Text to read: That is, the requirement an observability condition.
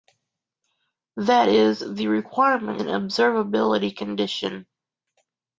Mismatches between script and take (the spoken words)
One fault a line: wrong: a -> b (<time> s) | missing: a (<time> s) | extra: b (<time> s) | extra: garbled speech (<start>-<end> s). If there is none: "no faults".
no faults